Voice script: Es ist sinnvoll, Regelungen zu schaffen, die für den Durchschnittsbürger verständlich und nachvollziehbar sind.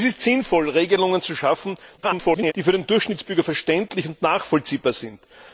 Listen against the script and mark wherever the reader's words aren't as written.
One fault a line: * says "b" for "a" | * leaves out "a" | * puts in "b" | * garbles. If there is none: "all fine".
* garbles